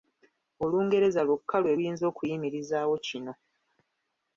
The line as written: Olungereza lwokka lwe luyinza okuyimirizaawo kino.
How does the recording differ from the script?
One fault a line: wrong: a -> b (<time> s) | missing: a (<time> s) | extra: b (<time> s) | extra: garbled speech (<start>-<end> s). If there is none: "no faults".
no faults